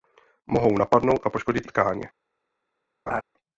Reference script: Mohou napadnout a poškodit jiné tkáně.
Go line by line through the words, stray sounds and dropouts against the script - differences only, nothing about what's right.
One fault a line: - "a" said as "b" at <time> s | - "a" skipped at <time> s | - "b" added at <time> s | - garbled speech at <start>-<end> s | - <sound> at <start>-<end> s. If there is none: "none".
- "jiné" skipped at 1.7 s
- laugh at 3.1-3.2 s